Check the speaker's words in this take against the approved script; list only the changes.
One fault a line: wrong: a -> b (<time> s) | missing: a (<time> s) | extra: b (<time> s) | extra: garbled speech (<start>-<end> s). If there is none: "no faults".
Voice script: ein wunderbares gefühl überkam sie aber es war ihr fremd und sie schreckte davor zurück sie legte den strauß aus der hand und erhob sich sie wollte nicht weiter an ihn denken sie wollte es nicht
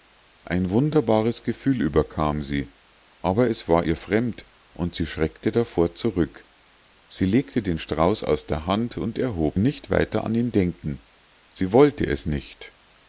missing: sich sie wollte (9.6 s)